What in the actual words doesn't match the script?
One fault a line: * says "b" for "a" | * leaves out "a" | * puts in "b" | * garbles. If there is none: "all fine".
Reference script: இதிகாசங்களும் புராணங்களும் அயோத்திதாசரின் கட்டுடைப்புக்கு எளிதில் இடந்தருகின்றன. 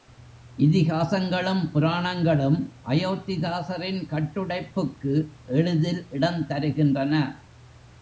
all fine